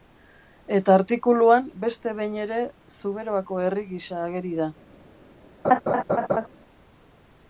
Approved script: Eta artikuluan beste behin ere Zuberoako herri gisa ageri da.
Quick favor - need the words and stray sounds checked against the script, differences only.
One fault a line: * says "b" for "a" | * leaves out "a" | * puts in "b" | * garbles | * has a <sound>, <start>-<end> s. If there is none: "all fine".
* has a laugh, 5.6-6.5 s